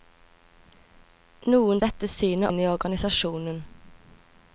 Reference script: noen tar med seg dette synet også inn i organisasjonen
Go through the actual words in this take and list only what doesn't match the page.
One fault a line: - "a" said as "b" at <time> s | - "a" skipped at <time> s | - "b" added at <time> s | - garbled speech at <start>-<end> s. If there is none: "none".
- "tar med seg" skipped at 1.8 s
- "også" skipped at 2.5 s